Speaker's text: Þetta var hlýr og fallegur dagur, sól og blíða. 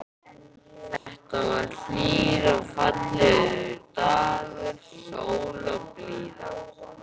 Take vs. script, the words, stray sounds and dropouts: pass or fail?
fail